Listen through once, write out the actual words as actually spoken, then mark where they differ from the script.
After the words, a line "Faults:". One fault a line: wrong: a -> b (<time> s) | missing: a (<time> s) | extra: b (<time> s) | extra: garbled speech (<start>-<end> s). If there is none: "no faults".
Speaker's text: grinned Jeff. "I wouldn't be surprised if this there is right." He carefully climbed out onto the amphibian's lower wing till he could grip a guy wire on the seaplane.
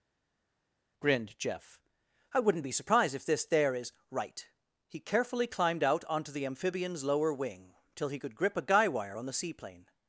grinned Jeff. "I wouldn't be surprised if this there is right." He carefully climbed out onto the amphibian's lower wing till he could grip a guy wire on the seaplane.
Faults:
no faults